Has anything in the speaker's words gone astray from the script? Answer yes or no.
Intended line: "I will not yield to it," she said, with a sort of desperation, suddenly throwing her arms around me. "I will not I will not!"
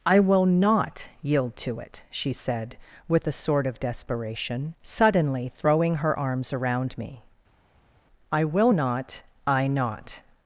yes